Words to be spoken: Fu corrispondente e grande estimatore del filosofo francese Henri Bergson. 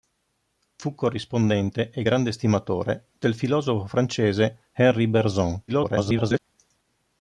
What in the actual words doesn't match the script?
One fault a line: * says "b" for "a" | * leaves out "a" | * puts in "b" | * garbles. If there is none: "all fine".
* garbles